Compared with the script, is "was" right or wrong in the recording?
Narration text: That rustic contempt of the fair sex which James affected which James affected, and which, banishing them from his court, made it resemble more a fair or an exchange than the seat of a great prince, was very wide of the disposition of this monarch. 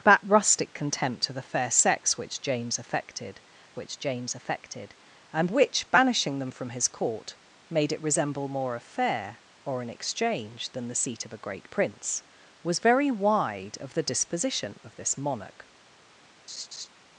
right